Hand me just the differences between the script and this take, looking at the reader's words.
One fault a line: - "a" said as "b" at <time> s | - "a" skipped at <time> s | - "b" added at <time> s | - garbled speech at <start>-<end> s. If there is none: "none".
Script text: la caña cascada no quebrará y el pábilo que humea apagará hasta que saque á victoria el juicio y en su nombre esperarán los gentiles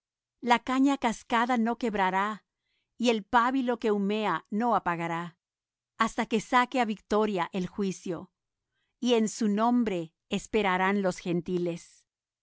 - "no" added at 4.5 s